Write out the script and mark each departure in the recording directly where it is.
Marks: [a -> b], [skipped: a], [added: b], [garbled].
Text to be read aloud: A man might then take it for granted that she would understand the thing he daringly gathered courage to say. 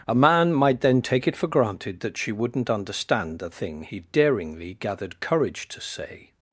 A man might then take it for granted that she [would -> wouldn't] understand the thing he daringly gathered courage to say.